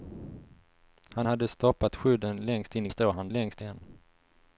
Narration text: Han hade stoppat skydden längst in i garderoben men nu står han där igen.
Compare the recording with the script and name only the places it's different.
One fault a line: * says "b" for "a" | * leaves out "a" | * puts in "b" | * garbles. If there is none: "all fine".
* leaves out "garderoben men nu"
* says "längst" for "där"